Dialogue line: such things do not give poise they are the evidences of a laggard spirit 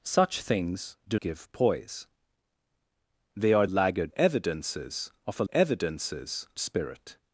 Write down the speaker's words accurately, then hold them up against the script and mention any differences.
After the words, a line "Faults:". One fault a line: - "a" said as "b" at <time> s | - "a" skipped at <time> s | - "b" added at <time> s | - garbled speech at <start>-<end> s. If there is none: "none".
such things do give poise they are laggard evidences of a evidences spirit
Faults:
- "not" skipped at 1.2 s
- "the" said as "laggard" at 3.6 s
- "laggard" said as "evidences" at 5.5 s